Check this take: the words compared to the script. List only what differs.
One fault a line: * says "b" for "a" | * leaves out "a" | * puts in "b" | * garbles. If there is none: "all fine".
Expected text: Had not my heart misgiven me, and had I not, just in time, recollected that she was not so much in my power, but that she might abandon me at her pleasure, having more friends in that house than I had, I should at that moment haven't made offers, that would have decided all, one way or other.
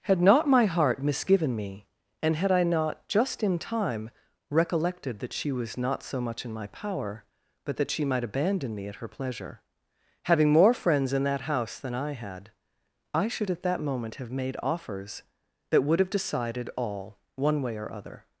* says "have" for "haven't"